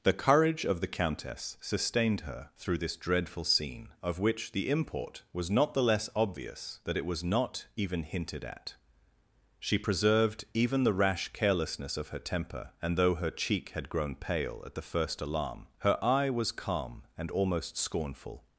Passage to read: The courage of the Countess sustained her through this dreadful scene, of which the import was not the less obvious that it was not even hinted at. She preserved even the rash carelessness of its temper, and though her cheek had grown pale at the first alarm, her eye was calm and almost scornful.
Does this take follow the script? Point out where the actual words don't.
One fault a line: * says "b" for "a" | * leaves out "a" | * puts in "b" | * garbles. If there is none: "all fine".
* says "her" for "its"